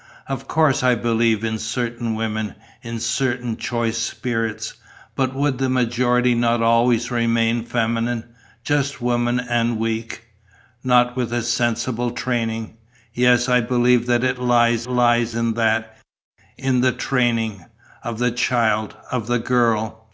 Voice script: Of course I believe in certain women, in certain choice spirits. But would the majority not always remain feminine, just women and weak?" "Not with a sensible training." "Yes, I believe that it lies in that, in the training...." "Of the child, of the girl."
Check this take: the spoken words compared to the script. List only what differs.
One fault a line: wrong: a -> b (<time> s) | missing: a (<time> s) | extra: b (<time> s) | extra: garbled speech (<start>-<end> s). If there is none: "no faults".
extra: lies (14.9 s)